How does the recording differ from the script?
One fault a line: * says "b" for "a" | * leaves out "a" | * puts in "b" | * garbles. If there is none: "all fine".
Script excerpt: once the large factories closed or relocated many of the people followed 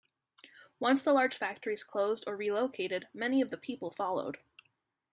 all fine